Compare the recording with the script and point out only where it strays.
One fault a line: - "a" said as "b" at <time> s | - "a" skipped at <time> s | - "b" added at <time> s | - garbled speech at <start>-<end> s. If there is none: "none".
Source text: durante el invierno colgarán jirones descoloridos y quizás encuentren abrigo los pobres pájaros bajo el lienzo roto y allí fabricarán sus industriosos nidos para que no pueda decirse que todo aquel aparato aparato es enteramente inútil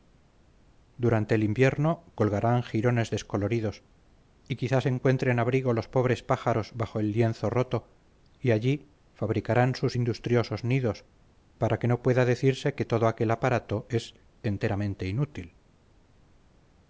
- "aparato" skipped at 13.9 s